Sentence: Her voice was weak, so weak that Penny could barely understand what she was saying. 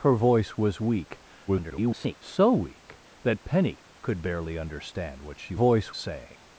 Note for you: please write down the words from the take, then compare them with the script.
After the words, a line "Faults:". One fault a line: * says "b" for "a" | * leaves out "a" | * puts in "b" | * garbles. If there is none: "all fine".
Her voice was weak, [garbled] so weak that Penny could barely understand what she voice saying.
Faults:
* garbles
* says "voice" for "was"